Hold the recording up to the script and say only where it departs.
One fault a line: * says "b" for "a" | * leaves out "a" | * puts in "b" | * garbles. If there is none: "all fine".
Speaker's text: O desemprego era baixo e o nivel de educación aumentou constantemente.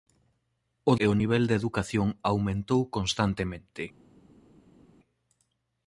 * leaves out "desemprego era baixo"